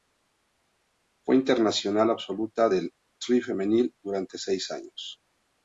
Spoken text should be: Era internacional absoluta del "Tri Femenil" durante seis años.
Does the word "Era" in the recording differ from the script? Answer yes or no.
yes